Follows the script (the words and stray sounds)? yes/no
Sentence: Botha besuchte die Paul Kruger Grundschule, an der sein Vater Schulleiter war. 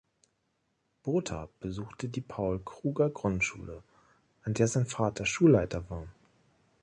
yes